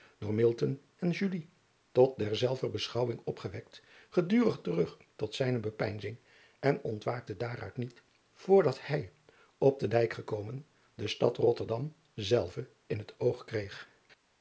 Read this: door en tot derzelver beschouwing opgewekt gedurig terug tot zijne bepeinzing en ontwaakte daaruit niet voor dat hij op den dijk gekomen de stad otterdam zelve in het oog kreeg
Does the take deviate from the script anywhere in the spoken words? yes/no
no